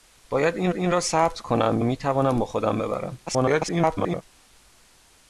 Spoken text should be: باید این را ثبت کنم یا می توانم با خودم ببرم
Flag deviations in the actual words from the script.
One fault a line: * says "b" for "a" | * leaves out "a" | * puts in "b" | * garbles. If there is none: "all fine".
* puts in "این"
* leaves out "یا"
* garbles